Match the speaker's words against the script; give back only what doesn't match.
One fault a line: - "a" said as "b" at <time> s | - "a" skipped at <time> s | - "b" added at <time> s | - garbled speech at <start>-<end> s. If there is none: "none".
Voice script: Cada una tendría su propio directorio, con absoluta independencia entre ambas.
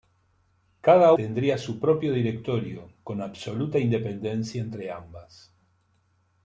- "una" skipped at 1.1 s